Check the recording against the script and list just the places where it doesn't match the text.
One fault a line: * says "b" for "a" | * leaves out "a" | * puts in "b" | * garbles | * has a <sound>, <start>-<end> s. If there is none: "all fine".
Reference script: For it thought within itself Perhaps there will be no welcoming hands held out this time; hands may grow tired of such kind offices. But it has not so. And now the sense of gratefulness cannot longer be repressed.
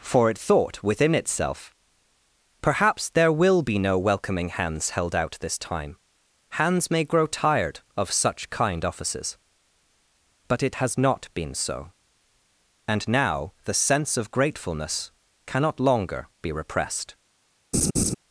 * puts in "been"
* has a laugh, 17.7-18.1 s